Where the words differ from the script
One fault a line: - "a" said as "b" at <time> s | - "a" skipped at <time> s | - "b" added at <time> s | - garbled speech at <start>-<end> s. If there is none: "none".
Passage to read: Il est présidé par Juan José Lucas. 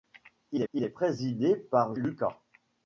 - "il" added at 0.7 s
- "Juan José" skipped at 2.0 s